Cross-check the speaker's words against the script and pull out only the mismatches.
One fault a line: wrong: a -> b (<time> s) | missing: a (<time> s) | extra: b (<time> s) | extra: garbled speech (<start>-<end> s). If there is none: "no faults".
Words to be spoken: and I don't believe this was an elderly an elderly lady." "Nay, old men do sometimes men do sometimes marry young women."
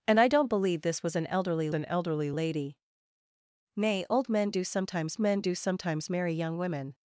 no faults